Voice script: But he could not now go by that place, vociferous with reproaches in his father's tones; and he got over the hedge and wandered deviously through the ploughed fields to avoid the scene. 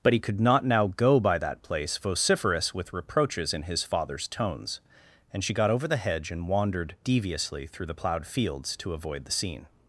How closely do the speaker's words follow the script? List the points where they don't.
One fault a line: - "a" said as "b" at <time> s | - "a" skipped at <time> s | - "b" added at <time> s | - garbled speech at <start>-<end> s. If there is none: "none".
- "he" said as "she" at 5.4 s